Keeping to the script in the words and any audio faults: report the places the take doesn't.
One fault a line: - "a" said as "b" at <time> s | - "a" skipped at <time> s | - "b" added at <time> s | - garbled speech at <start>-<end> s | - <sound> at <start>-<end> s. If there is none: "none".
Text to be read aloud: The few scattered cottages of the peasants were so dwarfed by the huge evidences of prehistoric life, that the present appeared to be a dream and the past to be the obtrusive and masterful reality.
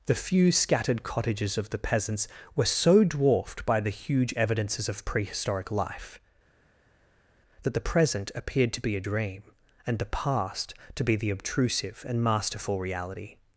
none